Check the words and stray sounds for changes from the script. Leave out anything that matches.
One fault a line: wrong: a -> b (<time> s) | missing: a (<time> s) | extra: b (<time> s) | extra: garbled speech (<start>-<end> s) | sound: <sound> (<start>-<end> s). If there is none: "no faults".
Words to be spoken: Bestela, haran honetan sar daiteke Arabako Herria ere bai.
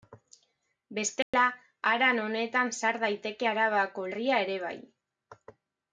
sound: dropout (1.2-1.3 s)